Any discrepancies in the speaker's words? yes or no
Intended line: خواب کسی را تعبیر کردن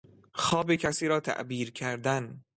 no